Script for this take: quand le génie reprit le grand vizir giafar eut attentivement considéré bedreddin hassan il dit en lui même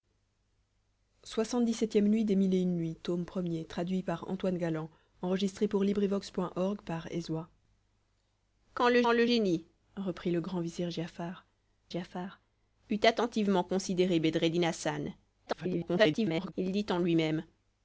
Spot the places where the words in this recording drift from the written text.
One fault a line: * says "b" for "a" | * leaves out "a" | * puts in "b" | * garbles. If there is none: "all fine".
* puts in "le"
* puts in "giafar"
* garbles